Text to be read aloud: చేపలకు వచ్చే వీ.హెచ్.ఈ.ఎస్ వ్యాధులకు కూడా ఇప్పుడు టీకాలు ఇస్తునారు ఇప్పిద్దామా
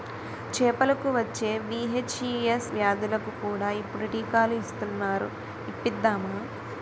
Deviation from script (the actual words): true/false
false